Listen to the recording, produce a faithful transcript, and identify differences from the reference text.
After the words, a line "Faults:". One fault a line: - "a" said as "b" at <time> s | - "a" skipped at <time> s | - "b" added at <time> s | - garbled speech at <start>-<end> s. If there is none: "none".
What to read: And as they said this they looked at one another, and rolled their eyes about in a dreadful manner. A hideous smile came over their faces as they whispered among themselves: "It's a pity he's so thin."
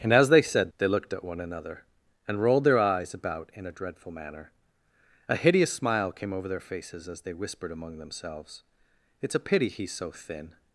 And as they said they looked at one another, and rolled their eyes about in a dreadful manner. A hideous smile came over their faces as they whispered among themselves: "It's a pity he's so thin."
Faults:
- "this" skipped at 0.7 s